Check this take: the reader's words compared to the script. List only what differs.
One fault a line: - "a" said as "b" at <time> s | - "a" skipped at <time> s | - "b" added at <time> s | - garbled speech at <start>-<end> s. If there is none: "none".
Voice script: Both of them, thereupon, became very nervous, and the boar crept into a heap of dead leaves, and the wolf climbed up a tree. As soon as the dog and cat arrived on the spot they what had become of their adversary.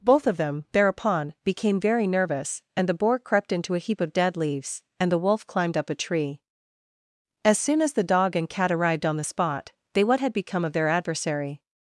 none